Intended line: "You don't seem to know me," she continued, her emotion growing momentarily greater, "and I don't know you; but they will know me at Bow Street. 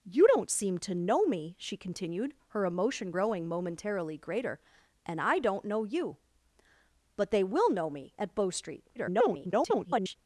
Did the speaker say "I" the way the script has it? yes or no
yes